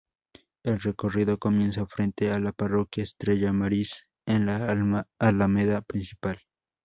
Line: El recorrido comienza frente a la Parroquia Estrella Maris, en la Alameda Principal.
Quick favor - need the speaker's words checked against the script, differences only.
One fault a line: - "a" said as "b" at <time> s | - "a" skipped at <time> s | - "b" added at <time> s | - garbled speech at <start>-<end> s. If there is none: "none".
none